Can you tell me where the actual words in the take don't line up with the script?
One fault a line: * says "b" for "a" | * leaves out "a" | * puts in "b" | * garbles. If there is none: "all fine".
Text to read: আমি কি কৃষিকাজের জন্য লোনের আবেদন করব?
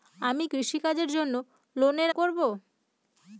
* leaves out "কি"
* leaves out "আবেদন"